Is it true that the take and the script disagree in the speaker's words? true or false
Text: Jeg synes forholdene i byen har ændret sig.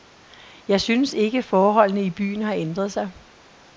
true